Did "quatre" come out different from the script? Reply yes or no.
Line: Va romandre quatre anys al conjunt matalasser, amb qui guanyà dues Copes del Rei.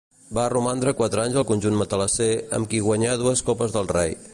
no